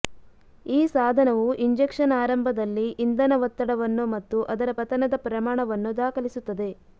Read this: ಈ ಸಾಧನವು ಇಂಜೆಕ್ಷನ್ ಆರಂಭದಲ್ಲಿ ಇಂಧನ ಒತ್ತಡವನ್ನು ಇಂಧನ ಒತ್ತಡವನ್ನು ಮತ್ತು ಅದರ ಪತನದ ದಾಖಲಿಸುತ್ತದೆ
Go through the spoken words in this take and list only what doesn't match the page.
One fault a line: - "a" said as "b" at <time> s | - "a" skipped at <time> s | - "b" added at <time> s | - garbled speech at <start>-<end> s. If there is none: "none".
- "ಇಂಧನ ಒತ್ತಡವನ್ನು" skipped at 4.0 s
- "ಪ್ರಮಾಣವನ್ನು" added at 5.3 s